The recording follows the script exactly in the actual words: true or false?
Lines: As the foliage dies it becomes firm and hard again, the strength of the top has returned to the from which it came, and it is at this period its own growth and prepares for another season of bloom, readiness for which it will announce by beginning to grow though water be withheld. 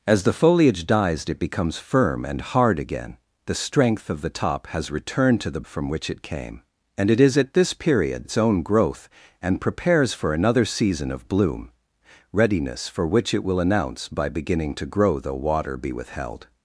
true